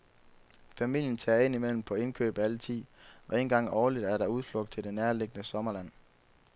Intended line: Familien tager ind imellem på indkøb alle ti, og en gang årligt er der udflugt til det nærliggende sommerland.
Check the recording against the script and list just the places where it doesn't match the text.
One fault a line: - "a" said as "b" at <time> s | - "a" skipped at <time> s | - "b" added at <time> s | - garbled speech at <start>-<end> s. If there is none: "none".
none